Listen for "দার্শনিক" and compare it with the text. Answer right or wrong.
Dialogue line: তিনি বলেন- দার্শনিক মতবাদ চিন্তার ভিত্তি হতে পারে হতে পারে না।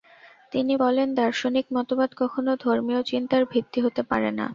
right